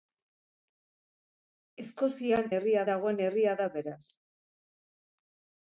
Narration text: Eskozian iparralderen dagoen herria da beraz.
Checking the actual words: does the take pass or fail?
fail